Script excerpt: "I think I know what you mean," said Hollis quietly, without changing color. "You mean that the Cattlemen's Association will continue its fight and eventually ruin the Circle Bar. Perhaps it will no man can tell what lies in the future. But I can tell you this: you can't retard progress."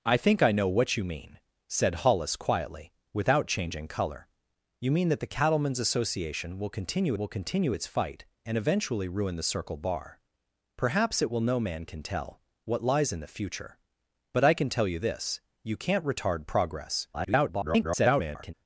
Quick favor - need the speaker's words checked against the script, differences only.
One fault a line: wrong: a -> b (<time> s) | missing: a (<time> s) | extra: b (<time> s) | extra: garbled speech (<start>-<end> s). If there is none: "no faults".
extra: will continue (7.2 s)
extra: garbled speech (17.1-18.5 s)